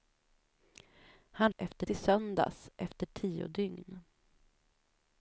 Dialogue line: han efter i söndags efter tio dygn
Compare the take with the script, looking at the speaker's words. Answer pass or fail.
pass